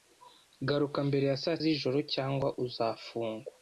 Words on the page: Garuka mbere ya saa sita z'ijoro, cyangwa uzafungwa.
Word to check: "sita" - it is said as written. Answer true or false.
false